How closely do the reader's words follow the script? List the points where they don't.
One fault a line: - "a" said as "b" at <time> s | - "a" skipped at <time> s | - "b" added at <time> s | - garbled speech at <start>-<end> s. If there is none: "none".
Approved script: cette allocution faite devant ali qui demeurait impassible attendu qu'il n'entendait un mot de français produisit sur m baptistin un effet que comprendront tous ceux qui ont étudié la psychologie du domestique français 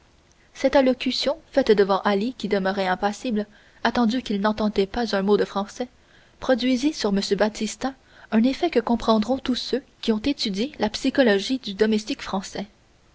- "pas" added at 4.9 s